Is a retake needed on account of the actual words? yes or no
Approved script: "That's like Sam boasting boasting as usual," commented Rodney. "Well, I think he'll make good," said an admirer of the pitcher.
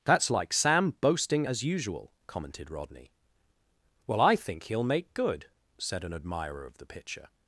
yes